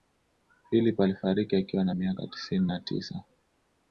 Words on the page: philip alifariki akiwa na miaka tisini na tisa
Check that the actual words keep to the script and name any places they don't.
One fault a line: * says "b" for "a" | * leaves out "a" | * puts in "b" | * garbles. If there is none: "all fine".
all fine